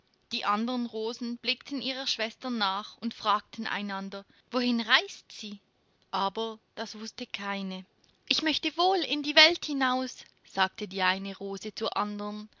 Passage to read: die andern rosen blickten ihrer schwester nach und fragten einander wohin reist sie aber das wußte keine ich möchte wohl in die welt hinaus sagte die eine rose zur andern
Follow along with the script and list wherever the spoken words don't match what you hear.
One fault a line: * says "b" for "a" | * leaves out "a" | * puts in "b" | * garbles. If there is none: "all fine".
all fine